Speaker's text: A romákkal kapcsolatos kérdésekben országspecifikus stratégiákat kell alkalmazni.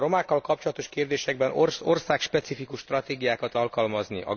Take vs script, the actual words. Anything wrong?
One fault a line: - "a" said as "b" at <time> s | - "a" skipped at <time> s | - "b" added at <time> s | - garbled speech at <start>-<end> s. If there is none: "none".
- "kell" skipped at 3.5 s